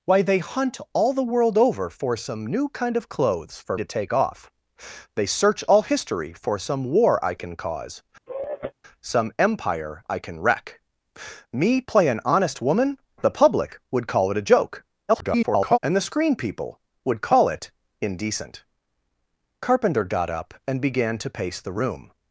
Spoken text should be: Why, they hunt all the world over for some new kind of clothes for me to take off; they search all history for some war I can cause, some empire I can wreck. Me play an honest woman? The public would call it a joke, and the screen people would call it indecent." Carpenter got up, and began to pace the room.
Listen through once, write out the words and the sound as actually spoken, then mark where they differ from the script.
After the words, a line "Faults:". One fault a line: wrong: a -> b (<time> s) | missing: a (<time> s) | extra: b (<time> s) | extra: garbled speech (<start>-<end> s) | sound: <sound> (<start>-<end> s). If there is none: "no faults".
Why, they hunt all the world over for some new kind of clothes for to take off; they search all history for some war I can cause, some empire I can wreck. Me play an honest woman? The public would call it a joke, [garbled] and the screen people would call it indecent." Carpenter got up, and began to pace the room.
Faults:
missing: me (3.8 s)
sound: sigh (8.3-8.7 s)
extra: garbled speech (15.1-15.8 s)